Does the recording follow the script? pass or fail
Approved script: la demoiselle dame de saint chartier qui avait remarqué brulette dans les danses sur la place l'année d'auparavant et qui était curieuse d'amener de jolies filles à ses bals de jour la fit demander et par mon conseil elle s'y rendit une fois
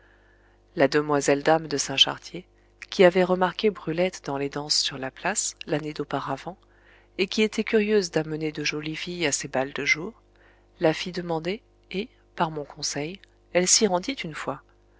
pass